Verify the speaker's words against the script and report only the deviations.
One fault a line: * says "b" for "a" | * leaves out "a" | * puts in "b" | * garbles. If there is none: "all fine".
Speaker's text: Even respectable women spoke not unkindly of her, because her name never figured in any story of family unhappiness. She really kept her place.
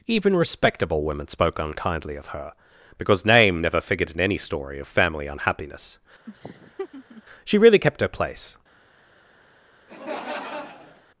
* leaves out "not"
* leaves out "her"